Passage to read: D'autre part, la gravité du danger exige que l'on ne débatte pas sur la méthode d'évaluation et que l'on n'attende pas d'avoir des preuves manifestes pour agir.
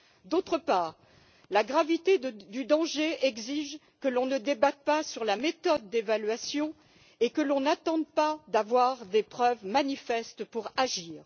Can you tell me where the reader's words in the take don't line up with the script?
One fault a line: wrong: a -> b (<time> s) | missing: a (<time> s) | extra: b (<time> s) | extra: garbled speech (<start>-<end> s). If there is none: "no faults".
no faults